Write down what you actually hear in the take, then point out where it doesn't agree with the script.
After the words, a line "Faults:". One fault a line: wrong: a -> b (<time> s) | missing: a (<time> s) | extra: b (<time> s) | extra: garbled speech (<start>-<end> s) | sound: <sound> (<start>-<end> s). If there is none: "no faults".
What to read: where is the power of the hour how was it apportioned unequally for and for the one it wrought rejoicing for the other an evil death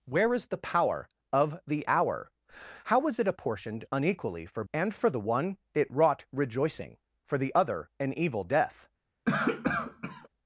where is the power of the hour how was it apportioned unequally for and for the one it wrought rejoicing for the other an evil death
Faults:
sound: cough (9.3-10.3 s)